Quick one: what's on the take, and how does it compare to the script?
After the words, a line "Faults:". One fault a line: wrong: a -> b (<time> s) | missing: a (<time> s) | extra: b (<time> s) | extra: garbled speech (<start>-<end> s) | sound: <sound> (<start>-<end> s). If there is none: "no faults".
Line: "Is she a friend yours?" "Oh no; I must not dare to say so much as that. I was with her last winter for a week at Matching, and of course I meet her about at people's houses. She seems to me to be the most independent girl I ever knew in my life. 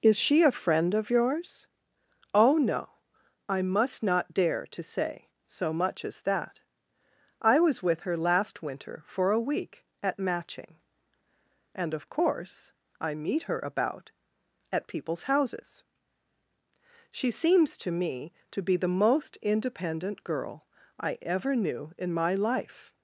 "Is she a friend of yours?" "Oh no; I must not dare to say so much as that. I was with her last winter for a week at Matching, and of course I meet her about at people's houses. She seems to me to be the most independent girl I ever knew in my life.
Faults:
extra: of (0.9 s)